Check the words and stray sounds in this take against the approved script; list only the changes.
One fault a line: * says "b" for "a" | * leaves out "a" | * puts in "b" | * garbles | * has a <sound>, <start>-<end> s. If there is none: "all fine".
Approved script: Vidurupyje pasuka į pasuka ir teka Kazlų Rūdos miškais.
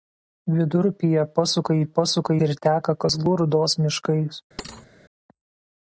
* has a thud, 4.6-4.9 s